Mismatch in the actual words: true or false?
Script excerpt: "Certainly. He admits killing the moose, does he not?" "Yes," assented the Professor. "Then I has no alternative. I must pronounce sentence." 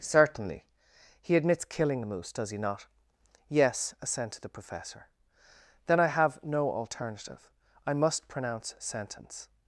true